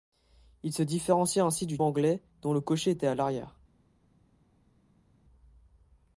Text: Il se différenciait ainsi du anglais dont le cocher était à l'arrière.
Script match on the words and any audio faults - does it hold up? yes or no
yes